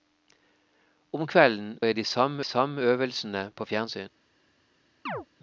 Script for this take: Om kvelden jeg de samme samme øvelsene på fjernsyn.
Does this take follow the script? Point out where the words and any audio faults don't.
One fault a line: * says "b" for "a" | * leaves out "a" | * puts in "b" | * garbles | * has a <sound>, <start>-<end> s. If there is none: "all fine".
* has a chirp, 5.1-5.3 s